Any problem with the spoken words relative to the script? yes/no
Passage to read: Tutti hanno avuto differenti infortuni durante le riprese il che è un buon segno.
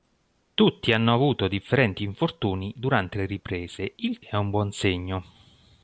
yes